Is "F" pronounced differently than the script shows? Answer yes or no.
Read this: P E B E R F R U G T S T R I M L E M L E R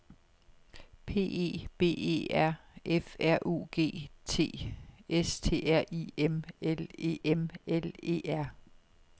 no